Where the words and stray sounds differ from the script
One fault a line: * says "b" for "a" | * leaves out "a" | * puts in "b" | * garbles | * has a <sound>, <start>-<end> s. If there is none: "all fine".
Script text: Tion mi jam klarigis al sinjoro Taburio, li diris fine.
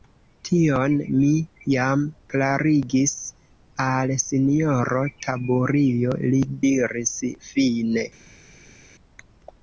all fine